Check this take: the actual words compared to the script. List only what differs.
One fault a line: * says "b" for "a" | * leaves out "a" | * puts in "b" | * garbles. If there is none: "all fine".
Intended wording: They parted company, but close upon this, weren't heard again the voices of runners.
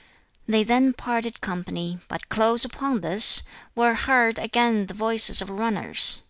* puts in "then"
* says "were" for "weren't"